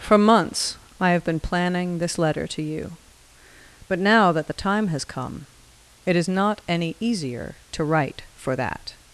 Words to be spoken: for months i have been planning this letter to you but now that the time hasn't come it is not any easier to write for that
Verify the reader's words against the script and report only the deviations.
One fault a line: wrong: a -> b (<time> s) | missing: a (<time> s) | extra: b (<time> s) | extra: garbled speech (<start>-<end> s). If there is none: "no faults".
wrong: hasn't -> has (4.9 s)